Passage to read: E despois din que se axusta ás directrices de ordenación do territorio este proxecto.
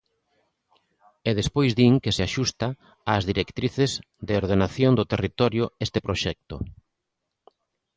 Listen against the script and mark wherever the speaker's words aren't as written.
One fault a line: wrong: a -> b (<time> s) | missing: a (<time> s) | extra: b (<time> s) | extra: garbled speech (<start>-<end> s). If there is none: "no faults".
no faults